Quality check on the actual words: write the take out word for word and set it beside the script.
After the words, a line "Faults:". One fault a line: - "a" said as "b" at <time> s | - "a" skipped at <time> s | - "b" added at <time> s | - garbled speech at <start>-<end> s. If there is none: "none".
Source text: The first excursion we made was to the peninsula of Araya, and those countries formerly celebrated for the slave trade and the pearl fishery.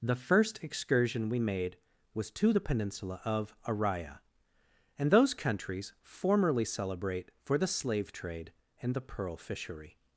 The first excursion we made was to the peninsula of Araya, and those countries formerly celebrate for the slave trade and the pearl fishery.
Faults:
- "celebrated" said as "celebrate" at 6.6 s